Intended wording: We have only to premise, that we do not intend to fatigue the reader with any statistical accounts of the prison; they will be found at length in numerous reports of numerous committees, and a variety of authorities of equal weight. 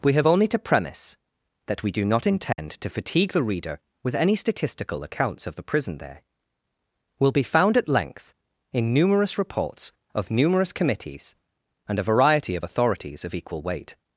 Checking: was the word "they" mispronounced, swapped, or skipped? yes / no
yes